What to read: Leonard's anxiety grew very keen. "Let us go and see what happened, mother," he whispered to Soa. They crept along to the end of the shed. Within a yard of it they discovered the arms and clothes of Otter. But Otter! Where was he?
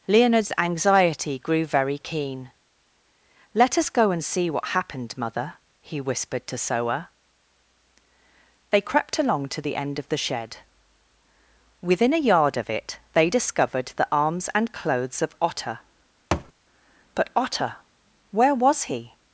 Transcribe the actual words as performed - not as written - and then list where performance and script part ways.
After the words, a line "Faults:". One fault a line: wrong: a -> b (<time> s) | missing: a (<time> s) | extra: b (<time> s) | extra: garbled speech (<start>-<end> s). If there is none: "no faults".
Leonard's anxiety grew very keen. "Let us go and see what happened, mother," he whispered to Soa. They crept along to the end of the shed. Within a yard of it they discovered the arms and clothes of Otter. But Otter! Where was he?
Faults:
no faults